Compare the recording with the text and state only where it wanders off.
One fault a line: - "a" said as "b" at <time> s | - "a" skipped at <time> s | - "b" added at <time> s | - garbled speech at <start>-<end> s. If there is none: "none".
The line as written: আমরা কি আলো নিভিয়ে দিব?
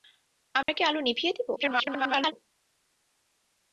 - garbled speech at 1.6-2.3 s